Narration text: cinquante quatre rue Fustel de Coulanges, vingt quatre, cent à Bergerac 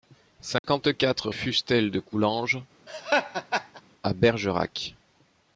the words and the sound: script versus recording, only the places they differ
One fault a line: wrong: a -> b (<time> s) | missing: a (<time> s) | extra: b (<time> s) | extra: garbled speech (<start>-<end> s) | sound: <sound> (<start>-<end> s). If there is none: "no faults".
sound: dropout (0.6-0.6 s)
missing: rue (1.3 s)
missing: vingt quatre cent (2.6 s)
sound: laugh (2.9-3.8 s)